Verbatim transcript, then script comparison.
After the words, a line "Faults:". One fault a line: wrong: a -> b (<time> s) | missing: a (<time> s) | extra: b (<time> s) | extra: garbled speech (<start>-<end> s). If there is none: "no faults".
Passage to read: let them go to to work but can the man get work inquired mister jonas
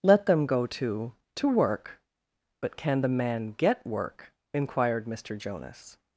let them go to to work but can the man get work inquired mister jonas
Faults:
no faults